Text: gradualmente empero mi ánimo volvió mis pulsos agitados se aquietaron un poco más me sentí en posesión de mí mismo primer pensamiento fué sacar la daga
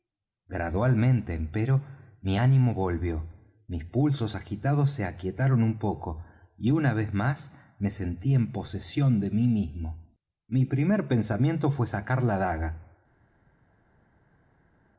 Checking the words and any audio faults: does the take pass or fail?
fail